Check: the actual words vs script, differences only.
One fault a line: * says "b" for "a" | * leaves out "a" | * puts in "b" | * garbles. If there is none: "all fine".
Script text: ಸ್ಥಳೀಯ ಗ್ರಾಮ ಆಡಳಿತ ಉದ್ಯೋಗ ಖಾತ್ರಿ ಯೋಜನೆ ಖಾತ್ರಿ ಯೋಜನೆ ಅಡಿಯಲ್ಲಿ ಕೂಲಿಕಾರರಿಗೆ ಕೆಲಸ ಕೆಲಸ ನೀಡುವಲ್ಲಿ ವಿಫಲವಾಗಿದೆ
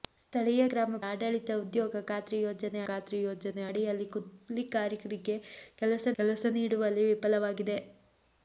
all fine